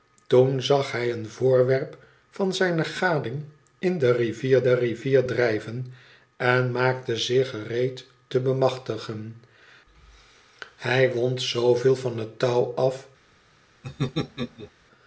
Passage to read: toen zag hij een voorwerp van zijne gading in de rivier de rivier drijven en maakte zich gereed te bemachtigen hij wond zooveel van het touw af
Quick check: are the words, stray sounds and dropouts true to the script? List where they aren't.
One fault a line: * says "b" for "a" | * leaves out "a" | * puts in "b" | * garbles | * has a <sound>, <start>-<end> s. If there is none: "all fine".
* has a laugh, 13.8-14.7 s